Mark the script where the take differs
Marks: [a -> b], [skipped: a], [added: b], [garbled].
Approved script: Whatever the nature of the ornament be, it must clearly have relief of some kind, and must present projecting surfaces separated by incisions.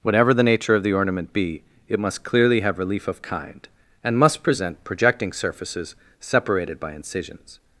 Whatever the nature of the ornament be, it must clearly have relief of [skipped: some] kind, and must present projecting surfaces separated by incisions.